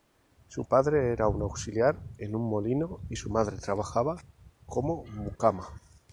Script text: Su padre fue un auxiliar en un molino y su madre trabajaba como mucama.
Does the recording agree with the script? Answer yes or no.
no